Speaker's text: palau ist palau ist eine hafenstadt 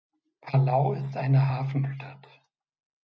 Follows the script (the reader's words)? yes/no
no